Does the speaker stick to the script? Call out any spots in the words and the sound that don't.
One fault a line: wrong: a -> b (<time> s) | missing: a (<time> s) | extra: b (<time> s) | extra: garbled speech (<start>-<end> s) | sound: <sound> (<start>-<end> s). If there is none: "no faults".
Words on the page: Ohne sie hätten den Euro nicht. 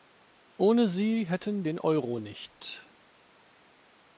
no faults